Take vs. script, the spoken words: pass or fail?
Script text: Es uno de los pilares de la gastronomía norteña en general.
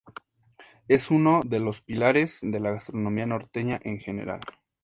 pass